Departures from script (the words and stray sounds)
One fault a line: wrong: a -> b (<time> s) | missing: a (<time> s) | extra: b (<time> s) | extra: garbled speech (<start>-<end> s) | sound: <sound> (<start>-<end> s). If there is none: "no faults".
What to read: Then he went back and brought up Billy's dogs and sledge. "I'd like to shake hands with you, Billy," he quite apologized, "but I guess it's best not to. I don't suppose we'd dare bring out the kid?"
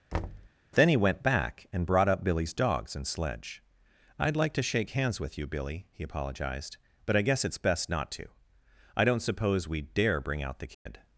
sound: thud (0.1-0.5 s)
missing: quite (6.0 s)
sound: dropout (10.7-10.9 s)